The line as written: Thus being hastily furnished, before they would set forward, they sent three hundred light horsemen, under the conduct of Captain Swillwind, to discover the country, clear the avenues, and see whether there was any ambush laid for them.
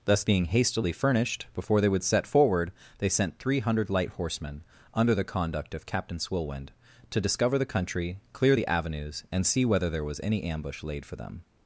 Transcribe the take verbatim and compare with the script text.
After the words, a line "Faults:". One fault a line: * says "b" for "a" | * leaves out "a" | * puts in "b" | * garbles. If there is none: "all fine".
Thus being hastily furnished, before they would set forward, they sent three hundred light horsemen, under the conduct of Captain Swillwind, to discover the country, clear the avenues, and see whether there was any ambush laid for them.
Faults:
all fine